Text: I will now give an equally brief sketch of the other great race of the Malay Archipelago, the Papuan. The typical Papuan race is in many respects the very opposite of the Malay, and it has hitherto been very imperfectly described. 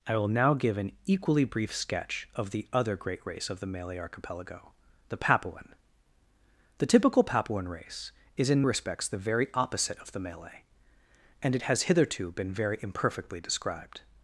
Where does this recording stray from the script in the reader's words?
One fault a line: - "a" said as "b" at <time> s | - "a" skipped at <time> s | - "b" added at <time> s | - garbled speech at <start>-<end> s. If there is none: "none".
- "many" skipped at 8.6 s